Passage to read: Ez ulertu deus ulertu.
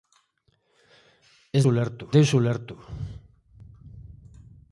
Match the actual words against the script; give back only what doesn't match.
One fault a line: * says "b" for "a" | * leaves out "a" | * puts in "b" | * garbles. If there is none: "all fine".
all fine